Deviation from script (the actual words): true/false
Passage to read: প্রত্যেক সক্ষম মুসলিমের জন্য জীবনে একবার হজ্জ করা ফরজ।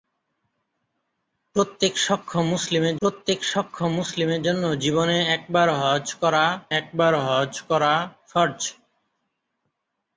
true